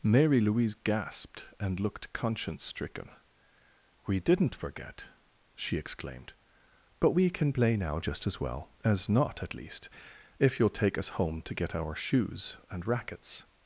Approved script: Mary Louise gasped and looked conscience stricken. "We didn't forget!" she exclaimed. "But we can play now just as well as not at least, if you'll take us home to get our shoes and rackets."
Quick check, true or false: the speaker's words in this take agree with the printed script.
true